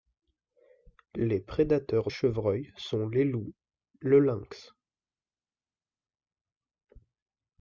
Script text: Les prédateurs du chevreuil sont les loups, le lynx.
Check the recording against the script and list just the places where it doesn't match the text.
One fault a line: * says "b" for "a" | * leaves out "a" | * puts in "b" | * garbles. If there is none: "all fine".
* leaves out "du"